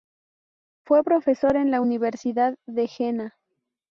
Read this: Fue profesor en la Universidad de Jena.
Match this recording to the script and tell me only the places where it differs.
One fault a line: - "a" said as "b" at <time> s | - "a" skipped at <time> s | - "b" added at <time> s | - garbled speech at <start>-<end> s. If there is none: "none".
none